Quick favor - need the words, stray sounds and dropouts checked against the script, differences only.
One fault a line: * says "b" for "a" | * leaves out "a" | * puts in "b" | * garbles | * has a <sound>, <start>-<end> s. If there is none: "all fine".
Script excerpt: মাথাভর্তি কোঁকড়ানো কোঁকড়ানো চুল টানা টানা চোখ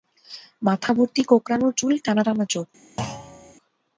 * leaves out "কোঁকড়ানো"
* has a thud, 3.0-3.5 s